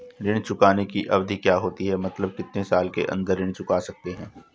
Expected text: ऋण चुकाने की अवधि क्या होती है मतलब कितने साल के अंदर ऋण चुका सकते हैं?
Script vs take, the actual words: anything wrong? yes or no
no